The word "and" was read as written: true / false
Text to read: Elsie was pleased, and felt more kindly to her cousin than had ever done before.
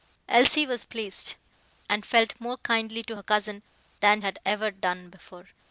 true